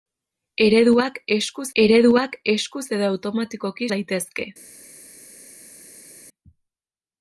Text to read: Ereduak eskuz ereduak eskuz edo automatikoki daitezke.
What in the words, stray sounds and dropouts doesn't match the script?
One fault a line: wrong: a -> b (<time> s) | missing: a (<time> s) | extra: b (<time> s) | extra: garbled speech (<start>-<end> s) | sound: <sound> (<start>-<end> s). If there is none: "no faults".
no faults